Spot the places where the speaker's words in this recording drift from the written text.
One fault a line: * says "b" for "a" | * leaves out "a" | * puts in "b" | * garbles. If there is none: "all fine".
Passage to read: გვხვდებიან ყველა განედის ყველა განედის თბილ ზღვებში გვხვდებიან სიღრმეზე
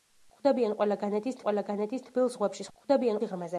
all fine